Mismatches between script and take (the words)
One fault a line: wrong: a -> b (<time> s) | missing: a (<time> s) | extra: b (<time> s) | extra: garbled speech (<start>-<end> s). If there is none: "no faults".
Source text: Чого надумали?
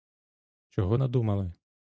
no faults